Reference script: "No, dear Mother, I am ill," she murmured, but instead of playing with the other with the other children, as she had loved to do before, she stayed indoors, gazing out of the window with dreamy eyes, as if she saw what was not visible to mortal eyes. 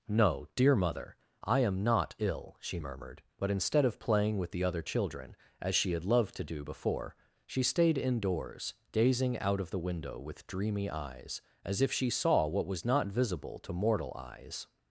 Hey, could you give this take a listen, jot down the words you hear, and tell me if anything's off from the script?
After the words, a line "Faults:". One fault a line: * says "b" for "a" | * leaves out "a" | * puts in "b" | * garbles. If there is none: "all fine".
"No, dear Mother, I am not ill," she murmured, but instead of playing with the other children, as she had loved to do before, she stayed indoors, gazing out of the window with dreamy eyes, as if she saw what was not visible to mortal eyes.
Faults:
* puts in "not"
* leaves out "with the other"